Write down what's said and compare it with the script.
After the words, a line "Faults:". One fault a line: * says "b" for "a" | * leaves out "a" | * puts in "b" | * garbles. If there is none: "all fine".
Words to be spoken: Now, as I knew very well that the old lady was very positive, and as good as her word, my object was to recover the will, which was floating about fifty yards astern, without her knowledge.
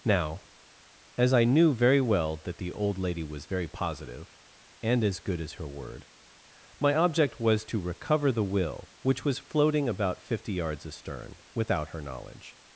Now, as I knew very well that the old lady was very positive, and as good as her word, my object was to recover the will, which was floating about fifty yards astern, without her knowledge.
Faults:
all fine